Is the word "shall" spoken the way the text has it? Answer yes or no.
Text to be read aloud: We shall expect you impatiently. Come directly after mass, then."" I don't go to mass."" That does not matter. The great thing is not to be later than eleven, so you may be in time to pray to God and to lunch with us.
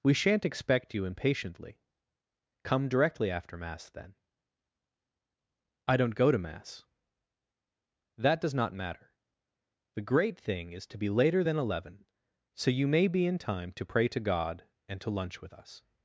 no